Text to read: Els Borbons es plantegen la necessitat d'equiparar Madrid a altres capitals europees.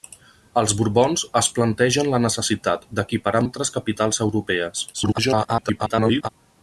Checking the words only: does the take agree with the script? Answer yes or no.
no